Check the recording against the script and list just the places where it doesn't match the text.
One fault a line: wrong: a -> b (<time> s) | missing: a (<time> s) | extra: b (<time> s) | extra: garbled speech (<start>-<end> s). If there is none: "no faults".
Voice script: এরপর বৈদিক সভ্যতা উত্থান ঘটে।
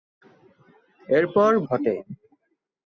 missing: বৈদিক সভ্যতা উত্থান (1.5 s)